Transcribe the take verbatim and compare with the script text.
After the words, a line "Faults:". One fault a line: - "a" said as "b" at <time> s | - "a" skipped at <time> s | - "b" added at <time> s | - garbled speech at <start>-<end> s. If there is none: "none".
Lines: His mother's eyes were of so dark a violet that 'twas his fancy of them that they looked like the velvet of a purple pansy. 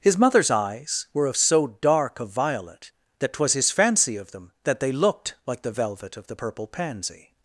His mother's eyes were of so dark a violet that 'twas his fancy of them that they looked like the velvet of the purple pansy.
Faults:
- "a" said as "the" at 6.3 s